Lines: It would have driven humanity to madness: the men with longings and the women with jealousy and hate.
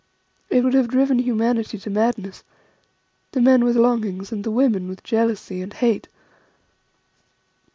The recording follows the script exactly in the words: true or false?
true